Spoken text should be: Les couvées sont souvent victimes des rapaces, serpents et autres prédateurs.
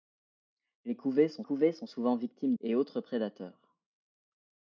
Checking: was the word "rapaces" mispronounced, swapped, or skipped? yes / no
yes